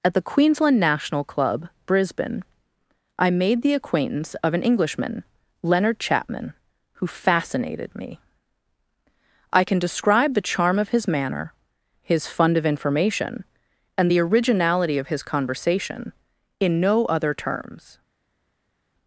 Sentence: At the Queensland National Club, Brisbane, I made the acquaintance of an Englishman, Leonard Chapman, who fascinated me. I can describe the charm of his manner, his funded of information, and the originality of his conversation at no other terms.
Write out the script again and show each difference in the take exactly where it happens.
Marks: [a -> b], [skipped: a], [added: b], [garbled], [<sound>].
At the Queensland National Club, Brisbane, I made the acquaintance of an Englishman, Leonard Chapman, who fascinated me. I can describe the charm of his manner, his [funded -> fund] of information, and the originality of his conversation [at -> in] no other terms.